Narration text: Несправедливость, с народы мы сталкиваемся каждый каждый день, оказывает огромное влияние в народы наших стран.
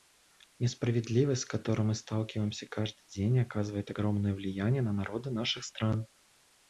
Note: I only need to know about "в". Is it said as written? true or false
false